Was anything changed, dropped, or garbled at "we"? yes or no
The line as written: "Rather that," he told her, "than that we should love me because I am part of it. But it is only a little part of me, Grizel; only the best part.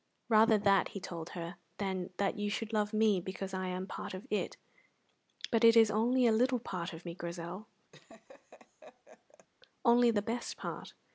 yes